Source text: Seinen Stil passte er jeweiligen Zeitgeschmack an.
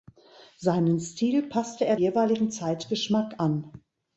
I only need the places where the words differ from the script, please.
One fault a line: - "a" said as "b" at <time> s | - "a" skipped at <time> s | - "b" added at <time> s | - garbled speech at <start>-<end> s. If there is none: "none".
none